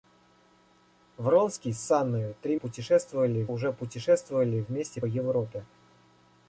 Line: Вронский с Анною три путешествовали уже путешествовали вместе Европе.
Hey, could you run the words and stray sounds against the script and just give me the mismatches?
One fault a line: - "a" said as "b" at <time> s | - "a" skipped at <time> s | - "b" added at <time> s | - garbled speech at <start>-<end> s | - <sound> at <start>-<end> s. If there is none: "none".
none